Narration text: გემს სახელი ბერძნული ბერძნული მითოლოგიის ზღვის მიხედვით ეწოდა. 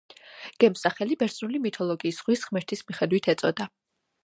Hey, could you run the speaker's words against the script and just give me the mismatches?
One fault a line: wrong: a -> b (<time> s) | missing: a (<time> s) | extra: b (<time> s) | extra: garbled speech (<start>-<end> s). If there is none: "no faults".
missing: ბერძნული (1.6 s)
extra: ღმერთის (2.5 s)